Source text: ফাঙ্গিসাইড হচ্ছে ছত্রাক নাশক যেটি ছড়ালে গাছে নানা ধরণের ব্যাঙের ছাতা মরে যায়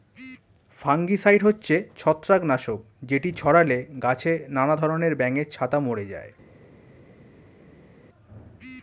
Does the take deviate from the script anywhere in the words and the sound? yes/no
no